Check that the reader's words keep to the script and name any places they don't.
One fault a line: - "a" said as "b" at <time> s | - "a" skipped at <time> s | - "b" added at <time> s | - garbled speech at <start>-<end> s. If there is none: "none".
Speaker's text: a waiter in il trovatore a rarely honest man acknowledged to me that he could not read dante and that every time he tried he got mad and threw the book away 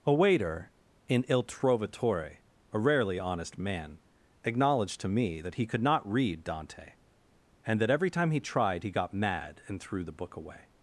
none